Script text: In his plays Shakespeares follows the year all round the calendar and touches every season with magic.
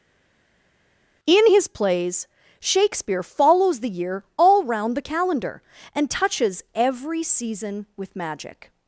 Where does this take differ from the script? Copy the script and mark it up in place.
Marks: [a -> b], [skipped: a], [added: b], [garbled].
In his plays [Shakespeares -> Shakespeare] follows the year all round the calendar and touches every season with magic.